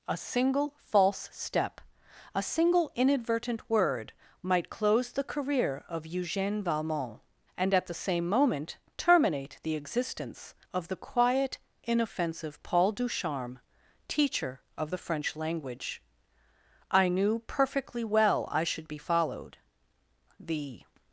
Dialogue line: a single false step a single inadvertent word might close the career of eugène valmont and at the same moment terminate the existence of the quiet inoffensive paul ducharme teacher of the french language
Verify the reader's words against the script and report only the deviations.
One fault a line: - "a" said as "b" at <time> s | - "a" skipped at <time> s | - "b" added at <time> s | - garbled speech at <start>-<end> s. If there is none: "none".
- "i knew perfectly well i should be followed the" added at 16.9 s